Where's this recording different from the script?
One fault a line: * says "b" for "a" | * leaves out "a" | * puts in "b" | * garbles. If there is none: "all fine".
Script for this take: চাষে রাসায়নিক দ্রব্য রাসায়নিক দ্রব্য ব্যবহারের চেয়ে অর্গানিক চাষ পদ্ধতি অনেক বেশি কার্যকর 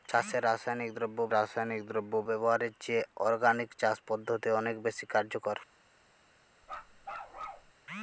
all fine